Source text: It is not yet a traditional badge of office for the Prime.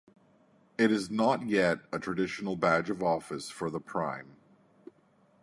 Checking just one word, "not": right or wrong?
right